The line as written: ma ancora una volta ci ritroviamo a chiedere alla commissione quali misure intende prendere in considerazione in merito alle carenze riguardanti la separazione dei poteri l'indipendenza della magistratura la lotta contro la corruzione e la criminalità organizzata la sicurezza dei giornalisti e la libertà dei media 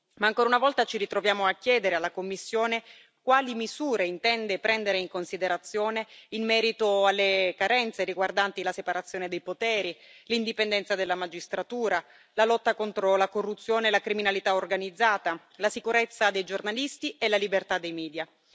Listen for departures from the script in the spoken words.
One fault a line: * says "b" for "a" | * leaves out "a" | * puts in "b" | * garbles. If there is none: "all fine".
all fine